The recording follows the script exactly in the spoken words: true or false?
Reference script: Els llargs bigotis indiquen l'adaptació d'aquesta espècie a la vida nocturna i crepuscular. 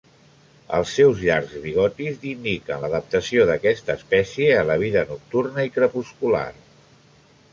false